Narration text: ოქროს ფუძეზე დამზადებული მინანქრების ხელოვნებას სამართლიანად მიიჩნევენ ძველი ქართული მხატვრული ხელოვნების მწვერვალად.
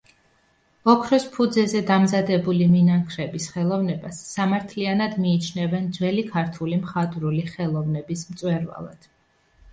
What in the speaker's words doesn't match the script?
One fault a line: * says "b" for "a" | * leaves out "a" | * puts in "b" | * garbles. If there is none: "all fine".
all fine